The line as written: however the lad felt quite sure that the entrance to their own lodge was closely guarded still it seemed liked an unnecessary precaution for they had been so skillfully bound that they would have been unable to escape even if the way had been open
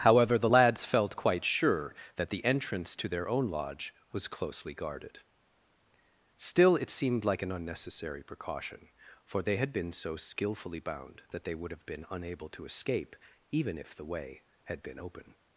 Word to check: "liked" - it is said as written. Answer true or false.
false